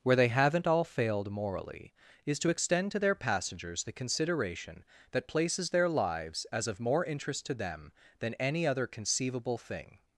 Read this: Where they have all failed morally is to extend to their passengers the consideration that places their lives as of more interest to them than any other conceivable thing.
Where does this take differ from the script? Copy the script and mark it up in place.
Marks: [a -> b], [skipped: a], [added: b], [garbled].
Where they [have -> haven't] all failed morally is to extend to their passengers the consideration that places their lives as of more interest to them than any other conceivable thing.